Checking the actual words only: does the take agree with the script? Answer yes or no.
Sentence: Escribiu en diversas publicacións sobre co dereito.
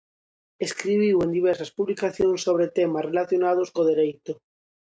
no